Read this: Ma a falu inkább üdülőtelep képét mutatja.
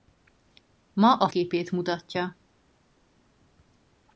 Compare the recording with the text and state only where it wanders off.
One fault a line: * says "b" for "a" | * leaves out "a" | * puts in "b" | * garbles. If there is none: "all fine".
* leaves out "falu inkább üdülőtelep"